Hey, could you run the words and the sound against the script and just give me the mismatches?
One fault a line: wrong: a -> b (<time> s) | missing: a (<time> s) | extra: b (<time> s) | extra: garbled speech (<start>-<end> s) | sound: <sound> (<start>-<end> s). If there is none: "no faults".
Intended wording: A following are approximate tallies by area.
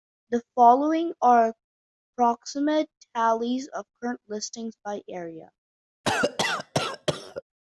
wrong: A -> The (0.3 s)
extra: of current listings (3.7 s)
sound: cough (6.0-7.4 s)